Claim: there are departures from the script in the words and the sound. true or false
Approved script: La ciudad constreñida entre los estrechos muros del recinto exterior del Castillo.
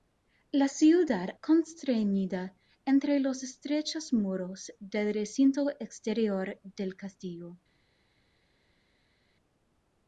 false